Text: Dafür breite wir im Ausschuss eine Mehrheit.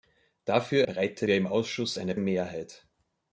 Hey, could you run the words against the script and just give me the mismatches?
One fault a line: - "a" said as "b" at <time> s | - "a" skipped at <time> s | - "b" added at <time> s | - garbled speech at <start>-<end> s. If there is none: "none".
none